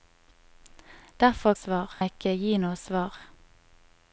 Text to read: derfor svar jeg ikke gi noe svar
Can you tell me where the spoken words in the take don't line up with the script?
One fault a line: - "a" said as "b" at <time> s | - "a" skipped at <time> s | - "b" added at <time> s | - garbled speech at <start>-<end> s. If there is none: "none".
none